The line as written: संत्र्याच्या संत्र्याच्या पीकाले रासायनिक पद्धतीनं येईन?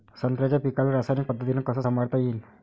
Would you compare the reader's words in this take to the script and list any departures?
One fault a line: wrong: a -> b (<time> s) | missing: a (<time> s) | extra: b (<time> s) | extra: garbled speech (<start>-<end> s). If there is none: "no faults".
missing: संत्र्याच्या (0.6 s)
extra: कस संभाळता (1.6 s)